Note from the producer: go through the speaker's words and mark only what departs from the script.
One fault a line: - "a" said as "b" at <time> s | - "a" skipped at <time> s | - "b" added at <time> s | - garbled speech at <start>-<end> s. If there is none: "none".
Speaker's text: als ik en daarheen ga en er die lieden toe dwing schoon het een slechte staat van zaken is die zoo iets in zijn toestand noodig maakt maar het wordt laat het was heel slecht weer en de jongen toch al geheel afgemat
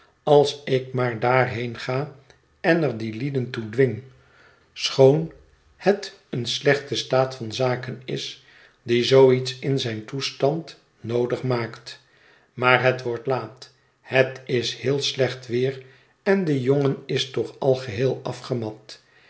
- "en" said as "maar" at 0.9 s
- "was" said as "is" at 14.5 s
- "is" added at 17.1 s